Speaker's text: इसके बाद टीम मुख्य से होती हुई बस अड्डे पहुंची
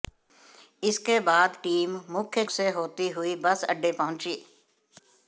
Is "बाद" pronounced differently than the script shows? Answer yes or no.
no